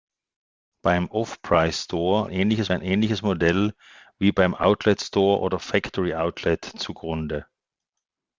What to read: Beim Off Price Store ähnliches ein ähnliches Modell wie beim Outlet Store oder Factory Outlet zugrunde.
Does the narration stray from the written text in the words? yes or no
no